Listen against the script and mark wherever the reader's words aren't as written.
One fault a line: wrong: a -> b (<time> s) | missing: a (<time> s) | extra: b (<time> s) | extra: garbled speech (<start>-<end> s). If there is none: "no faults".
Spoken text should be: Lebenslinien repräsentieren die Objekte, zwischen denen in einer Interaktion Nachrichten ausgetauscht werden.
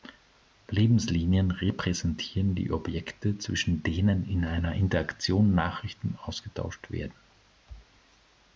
no faults